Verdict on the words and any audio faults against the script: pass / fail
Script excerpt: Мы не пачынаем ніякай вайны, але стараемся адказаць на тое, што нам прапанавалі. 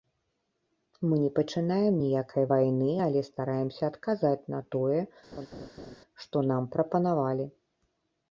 fail